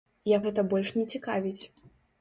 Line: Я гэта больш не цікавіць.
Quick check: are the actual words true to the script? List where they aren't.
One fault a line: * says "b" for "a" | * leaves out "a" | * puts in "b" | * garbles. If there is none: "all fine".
all fine